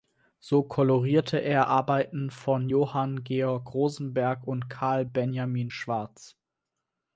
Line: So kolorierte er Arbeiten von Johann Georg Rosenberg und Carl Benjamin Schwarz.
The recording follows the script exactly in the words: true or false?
true